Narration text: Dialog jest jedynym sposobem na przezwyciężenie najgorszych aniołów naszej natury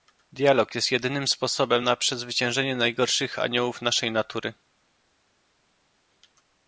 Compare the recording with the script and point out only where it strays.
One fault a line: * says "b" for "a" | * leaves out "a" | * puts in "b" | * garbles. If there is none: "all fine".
all fine